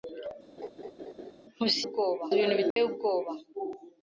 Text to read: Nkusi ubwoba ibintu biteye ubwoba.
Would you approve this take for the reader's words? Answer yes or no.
yes